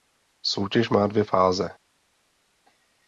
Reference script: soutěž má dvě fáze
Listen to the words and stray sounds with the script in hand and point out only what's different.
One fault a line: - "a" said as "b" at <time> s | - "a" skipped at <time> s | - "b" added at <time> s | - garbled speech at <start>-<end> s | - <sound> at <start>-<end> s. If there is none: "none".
none